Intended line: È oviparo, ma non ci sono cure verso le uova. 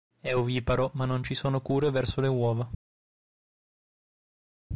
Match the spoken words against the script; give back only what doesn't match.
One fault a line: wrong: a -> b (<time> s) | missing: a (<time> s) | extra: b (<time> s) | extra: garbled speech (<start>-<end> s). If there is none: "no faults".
no faults